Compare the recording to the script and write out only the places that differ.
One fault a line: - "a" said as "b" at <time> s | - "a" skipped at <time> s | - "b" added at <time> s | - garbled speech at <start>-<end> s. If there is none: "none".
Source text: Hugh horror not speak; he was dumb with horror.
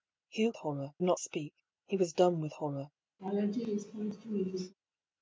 none